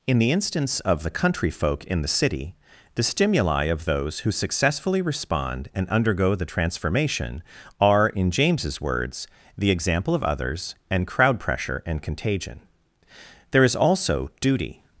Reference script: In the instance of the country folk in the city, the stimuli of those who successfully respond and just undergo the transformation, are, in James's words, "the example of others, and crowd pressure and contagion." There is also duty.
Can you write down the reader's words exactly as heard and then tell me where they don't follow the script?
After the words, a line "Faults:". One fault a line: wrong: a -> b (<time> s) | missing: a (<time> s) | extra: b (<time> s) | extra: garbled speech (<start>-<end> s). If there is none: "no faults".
In the instance of the country folk in the city, the stimuli of those who successfully respond and undergo the transformation, are, in James's words, "the example of others, and crowd pressure and contagion." There is also duty.
Faults:
missing: just (5.9 s)